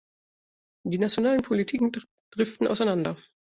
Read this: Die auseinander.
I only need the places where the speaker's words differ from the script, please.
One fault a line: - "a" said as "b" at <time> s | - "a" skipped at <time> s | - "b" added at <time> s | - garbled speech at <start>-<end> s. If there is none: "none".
- "nationalen Politiken driften" added at 1.0 s